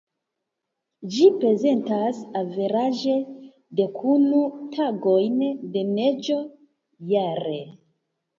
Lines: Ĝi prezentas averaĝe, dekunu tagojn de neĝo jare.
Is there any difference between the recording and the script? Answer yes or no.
no